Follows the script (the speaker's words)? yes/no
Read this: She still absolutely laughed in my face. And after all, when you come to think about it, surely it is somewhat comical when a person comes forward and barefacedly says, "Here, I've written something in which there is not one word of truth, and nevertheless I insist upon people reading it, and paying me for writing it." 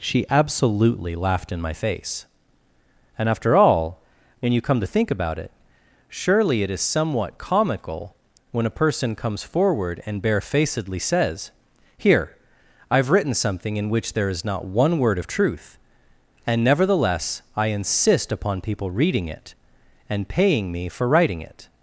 no